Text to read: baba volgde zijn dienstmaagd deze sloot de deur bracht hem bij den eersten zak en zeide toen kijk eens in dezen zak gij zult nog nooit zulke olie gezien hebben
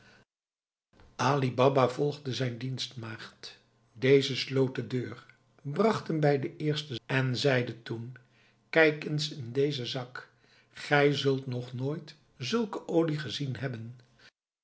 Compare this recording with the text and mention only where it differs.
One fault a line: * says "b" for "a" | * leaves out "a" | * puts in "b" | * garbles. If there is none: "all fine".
* leaves out "zak"